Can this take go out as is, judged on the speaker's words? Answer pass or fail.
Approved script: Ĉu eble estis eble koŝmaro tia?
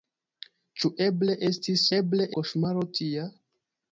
pass